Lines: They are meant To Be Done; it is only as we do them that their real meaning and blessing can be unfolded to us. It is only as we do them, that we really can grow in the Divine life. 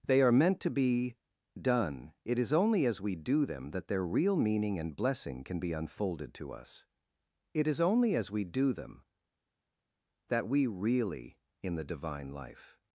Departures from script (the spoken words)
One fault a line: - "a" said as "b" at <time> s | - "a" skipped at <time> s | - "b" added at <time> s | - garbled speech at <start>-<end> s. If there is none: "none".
- "can grow" skipped at 11.4 s